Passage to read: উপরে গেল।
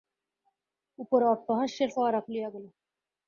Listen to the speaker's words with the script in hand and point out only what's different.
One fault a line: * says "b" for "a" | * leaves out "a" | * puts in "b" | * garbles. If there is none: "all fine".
* puts in "অট্টহাস্যের ফোয়ারা খুলিয়া"